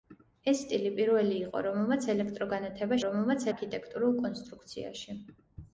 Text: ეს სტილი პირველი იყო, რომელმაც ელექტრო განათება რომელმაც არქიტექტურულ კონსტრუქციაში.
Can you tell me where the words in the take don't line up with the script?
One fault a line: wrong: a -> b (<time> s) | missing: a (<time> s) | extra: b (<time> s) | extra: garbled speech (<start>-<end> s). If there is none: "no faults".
no faults